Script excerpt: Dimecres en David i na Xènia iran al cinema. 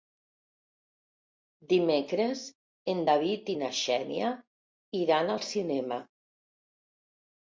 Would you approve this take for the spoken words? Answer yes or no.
yes